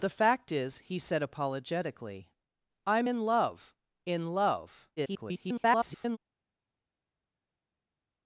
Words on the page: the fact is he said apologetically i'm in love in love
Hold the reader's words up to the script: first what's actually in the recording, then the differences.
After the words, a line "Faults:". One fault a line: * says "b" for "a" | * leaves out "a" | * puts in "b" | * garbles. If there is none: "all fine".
the fact is he said apologetically i'm in love in love [garbled]
Faults:
* garbles